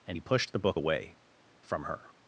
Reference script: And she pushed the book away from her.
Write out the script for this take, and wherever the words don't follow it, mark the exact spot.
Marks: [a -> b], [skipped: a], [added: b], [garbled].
And [she -> he] pushed the book away from her.